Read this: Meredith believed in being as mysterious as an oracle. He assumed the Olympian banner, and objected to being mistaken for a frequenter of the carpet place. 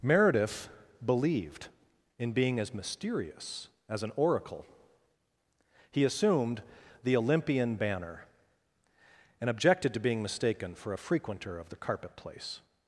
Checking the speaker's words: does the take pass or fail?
pass